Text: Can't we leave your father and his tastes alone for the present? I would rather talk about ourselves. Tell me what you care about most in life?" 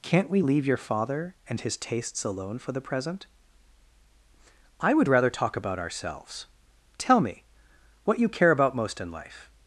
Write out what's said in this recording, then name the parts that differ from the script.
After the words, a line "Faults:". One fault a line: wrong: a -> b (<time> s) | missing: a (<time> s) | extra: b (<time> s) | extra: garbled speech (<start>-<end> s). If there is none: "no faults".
Can't we leave your father and his tastes alone for the present? I would rather talk about ourselves. Tell me what you care about most in life?"
Faults:
no faults